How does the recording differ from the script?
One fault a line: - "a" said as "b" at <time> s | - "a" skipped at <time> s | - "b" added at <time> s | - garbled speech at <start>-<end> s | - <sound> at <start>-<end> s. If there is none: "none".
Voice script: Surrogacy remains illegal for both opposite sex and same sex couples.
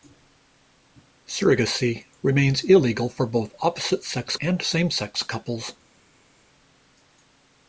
none